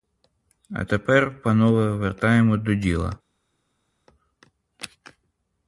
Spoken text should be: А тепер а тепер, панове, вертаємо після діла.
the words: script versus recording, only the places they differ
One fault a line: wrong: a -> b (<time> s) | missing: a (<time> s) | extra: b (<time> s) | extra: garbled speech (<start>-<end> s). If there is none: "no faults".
missing: а тепер (1.4 s)
wrong: після -> до (2.6 s)